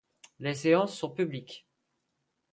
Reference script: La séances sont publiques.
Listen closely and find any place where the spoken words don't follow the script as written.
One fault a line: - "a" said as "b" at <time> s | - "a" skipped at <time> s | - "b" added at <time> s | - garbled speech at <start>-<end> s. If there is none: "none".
- "La" said as "Les" at 0.4 s